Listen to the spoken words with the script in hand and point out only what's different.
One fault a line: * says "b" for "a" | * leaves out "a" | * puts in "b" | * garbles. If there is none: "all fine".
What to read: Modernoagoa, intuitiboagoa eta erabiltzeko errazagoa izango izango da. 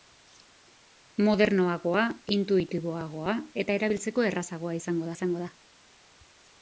all fine